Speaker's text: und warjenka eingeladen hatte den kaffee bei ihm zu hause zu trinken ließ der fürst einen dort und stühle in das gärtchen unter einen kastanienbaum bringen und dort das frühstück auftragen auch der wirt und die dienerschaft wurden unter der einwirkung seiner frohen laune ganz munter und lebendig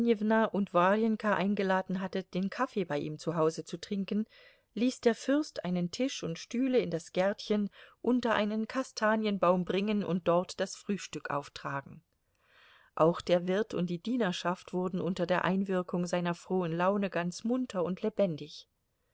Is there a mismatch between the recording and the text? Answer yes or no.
yes